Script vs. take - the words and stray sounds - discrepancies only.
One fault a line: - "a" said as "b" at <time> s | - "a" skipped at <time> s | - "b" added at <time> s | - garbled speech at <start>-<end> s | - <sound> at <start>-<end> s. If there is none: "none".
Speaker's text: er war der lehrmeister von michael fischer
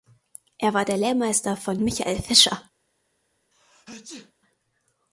- sneeze at 3.5-4.3 s